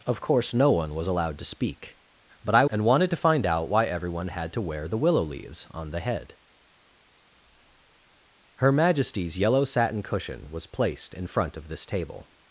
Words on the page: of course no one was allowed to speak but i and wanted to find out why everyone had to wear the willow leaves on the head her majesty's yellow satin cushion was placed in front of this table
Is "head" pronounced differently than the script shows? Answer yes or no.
no